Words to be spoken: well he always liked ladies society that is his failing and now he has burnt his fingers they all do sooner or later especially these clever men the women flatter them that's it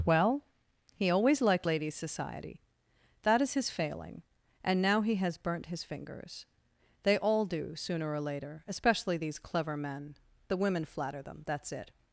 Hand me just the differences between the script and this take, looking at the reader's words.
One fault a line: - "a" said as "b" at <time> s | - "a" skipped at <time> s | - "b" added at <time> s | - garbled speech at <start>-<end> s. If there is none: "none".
none